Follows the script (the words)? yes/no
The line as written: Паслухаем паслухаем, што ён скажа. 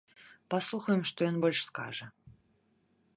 no